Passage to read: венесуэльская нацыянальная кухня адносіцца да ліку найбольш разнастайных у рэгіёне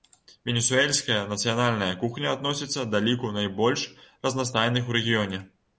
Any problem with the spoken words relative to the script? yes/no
no